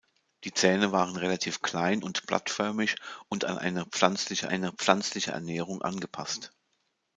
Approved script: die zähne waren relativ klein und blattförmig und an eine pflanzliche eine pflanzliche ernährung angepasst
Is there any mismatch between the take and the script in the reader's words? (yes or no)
no